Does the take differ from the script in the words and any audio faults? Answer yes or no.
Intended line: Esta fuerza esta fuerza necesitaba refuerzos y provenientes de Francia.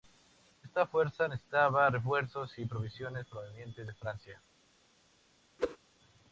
yes